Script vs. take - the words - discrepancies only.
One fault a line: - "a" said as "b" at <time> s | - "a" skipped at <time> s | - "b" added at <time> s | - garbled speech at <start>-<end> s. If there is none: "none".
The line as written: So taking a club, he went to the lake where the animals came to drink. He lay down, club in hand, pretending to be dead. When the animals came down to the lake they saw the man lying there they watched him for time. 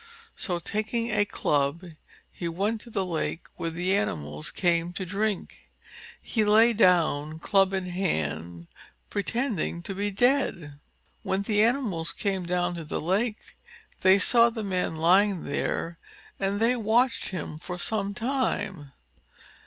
- "and" added at 16.4 s
- "some" added at 17.8 s